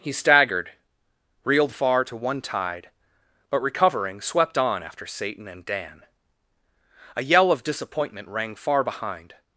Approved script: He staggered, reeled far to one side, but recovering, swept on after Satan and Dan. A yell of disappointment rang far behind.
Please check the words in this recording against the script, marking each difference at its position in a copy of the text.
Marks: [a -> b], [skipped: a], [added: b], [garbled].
He staggered, reeled far to one [side, -> tide] but recovering, swept on after Satan and Dan. A yell of disappointment rang far behind.